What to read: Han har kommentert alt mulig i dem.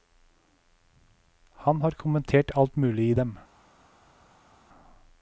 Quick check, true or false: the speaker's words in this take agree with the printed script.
true